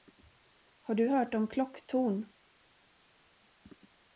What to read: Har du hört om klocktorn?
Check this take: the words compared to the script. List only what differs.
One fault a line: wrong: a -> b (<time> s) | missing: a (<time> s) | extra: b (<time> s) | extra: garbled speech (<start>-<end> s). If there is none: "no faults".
no faults